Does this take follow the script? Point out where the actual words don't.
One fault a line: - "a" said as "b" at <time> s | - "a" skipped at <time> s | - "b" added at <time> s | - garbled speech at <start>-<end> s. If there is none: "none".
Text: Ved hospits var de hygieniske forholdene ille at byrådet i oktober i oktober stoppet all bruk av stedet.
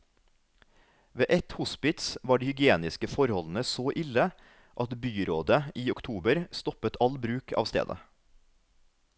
- "ett" added at 1.3 s
- "så" added at 3.7 s
- "i oktober" skipped at 6.4 s